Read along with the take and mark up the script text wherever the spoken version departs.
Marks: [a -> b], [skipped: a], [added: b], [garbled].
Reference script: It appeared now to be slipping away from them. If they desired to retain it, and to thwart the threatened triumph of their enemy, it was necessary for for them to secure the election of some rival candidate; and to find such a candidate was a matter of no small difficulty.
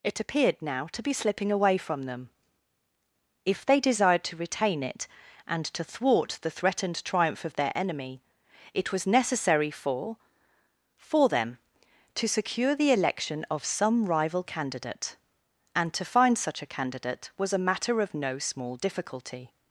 It appeared now to be slipping away from them. If they desired to retain it, and to thwart the threatened triumph of their enemy, it was necessary for for them to secure the election of some rival candidate; and to find such a candidate was a matter of no small difficulty.